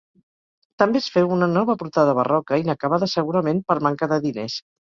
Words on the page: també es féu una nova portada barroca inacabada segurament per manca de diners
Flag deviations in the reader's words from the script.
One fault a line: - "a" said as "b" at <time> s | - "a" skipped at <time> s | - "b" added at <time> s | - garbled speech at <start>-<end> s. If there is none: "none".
none